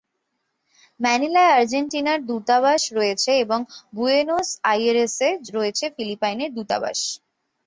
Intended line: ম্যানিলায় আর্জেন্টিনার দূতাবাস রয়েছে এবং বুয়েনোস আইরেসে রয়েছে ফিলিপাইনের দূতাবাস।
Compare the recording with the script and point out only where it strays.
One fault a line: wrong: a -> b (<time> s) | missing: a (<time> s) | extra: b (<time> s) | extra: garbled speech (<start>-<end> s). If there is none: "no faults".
no faults